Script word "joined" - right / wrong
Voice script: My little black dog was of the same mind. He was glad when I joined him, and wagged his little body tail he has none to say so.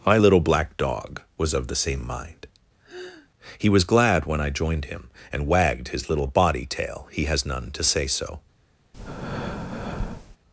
right